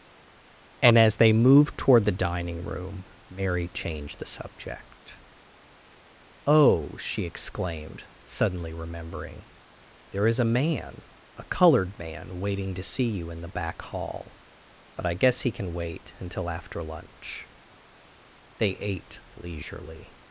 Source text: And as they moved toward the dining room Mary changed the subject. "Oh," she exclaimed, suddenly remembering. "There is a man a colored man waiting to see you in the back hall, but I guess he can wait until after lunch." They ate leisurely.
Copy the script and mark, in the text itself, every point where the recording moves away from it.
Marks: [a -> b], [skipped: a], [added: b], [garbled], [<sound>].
And as they moved toward the dining room Mary changed the subject. "Oh," she exclaimed, suddenly remembering. "There is a man a colored man waiting to see you in the back hall, but I guess he can wait until after lunch." They ate leisurely.